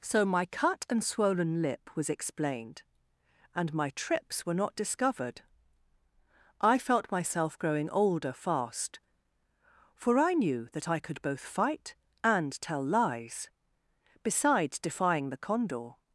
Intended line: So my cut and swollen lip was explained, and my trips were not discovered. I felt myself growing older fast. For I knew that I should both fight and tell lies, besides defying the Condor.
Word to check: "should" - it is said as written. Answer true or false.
false